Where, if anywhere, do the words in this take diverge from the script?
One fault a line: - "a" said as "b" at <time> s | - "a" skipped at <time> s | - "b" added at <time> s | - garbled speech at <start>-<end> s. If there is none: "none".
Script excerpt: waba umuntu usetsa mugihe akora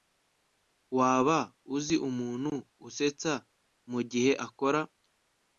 - "uzi" added at 1.8 s